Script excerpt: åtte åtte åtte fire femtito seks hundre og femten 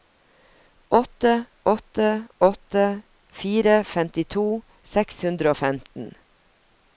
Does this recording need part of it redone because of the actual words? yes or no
no